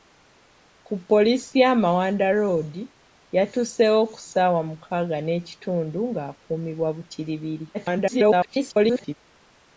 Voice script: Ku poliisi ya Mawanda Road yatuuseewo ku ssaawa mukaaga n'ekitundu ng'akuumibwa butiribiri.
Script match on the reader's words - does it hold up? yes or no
no